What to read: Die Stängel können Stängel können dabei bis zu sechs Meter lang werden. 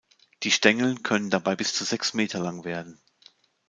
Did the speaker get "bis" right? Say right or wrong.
right